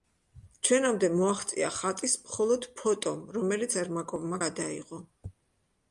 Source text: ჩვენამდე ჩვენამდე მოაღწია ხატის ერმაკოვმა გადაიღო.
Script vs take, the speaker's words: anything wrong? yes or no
yes